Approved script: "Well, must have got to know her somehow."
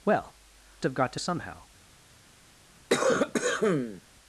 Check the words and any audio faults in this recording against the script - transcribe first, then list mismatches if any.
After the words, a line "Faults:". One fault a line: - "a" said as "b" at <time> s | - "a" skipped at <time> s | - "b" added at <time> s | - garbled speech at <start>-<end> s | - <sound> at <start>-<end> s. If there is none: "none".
"Well, have got to somehow."
Faults:
- "must" skipped at 0.3 s
- "know her" skipped at 1.2 s
- cough at 2.9-4.0 s